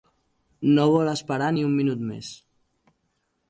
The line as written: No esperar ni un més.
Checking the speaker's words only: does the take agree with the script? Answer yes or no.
no